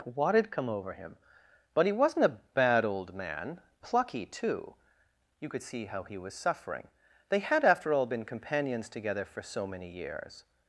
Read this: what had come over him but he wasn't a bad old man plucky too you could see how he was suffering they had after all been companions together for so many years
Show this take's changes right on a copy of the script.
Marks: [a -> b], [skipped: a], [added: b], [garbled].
what had come over him but he wasn't a bad old man plucky too you could see how he was suffering they had after all been companions together for so many years